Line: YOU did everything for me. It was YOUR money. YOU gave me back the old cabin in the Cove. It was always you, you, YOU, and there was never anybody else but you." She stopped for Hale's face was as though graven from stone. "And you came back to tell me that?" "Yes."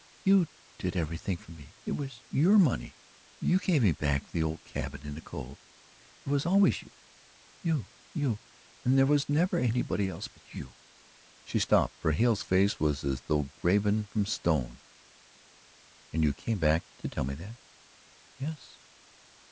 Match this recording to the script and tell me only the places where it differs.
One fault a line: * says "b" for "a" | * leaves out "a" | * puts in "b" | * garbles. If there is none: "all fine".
all fine